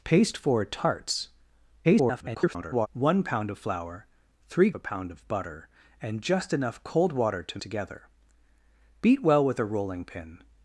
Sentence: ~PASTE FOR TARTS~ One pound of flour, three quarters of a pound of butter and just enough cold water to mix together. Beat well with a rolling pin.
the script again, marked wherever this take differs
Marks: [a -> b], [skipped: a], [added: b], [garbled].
~PASTE FOR TARTS~ [garbled] One pound of flour, three [skipped: quarters of] a pound of butter and just enough cold water to [skipped: mix] together. Beat well with a rolling pin.